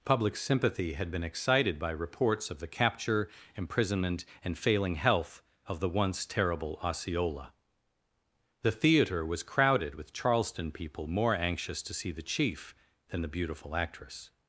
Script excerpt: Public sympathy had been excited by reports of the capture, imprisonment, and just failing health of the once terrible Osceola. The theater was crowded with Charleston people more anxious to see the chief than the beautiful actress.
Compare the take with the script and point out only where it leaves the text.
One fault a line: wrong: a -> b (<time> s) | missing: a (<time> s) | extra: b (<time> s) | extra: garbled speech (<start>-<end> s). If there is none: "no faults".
missing: just (4.6 s)